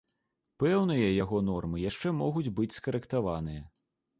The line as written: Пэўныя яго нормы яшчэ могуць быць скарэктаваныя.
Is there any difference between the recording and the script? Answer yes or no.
no